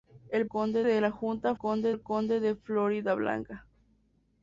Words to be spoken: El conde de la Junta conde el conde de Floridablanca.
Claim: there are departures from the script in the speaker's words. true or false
false